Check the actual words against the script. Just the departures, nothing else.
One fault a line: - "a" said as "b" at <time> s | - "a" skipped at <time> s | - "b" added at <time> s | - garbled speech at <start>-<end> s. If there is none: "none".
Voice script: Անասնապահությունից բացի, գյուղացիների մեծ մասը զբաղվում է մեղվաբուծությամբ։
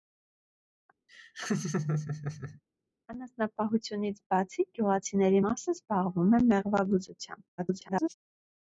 - "մեծ" skipped at 5.4 s
- garbled speech at 7.6-8.1 s